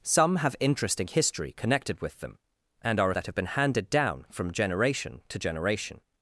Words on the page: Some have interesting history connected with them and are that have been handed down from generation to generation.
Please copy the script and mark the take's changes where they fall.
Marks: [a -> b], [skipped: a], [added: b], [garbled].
Some have interesting history connected with them and are that have been handed down from generation to generation.